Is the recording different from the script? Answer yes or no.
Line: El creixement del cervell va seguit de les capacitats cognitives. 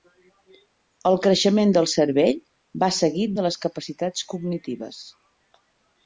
no